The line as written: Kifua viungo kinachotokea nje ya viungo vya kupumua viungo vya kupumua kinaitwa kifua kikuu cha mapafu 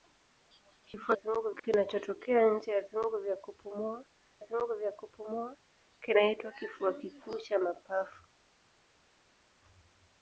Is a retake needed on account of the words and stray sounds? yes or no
no